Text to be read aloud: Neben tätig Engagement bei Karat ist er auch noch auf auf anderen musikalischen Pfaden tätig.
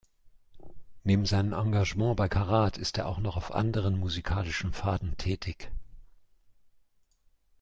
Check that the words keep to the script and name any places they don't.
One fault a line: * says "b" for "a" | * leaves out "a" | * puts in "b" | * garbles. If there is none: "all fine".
* says "seinem" for "tätig"
* leaves out "auf"